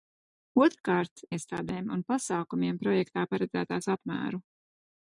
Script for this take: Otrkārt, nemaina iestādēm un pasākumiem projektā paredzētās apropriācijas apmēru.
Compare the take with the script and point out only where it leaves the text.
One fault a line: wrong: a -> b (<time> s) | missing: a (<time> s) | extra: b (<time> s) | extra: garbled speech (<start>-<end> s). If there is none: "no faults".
missing: nemaina (1.2 s)
missing: apropriācijas (3.9 s)